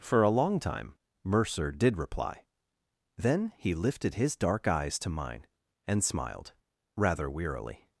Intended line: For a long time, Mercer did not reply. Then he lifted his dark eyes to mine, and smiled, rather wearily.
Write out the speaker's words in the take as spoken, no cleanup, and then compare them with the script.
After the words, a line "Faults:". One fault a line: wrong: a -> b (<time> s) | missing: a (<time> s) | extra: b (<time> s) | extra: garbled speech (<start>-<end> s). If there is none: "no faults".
For a long time, Mercer did reply. Then he lifted his dark eyes to mine, and smiled, rather wearily.
Faults:
missing: not (1.9 s)